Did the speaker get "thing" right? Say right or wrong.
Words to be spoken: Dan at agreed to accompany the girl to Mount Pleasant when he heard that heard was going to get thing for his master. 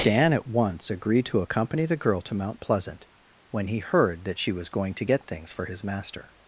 wrong